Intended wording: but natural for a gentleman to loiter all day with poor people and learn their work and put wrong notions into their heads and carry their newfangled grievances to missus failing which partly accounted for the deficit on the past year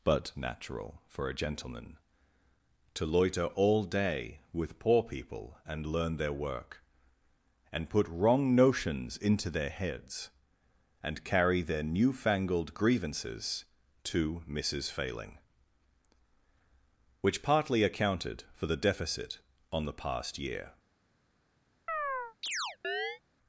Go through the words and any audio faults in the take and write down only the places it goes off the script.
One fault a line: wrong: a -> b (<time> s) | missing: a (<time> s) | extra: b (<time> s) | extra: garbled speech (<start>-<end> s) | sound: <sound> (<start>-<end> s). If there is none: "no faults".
sound: chirp (21.9-23.2 s)